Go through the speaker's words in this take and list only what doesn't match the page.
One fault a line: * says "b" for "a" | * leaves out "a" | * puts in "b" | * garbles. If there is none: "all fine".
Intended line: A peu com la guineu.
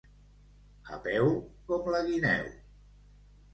all fine